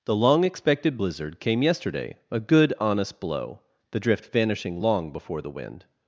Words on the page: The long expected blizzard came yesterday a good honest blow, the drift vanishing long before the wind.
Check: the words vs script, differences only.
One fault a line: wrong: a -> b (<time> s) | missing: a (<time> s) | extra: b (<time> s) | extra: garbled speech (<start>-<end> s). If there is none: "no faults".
no faults